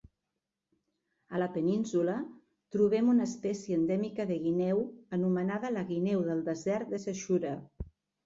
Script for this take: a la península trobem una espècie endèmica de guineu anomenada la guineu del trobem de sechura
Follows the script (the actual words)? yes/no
no